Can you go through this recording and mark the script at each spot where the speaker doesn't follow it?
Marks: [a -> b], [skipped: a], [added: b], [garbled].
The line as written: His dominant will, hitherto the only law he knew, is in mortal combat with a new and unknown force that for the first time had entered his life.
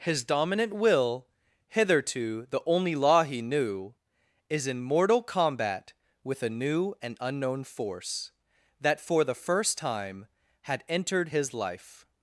His dominant will, hitherto the only law he knew, is in mortal combat with a new and unknown force that for the first time had entered his life.